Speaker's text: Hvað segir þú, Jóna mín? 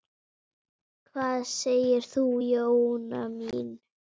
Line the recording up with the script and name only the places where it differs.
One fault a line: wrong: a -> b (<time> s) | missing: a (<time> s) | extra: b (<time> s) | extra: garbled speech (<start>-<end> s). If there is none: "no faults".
no faults